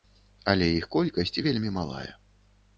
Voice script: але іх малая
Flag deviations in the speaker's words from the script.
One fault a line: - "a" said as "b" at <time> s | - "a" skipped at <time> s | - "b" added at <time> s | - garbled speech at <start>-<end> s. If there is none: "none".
- "колькасць вельмі" added at 0.9 s